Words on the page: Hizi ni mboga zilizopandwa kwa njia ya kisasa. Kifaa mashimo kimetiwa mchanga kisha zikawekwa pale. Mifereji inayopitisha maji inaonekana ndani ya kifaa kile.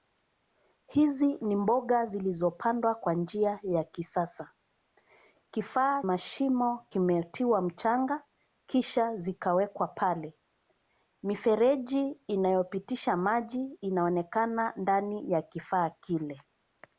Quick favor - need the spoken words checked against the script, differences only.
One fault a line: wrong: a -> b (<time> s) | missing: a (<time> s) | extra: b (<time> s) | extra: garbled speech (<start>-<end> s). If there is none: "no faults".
no faults